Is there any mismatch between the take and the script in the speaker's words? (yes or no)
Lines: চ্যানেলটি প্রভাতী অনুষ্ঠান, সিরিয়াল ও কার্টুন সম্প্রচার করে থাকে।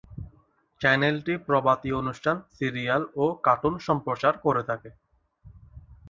no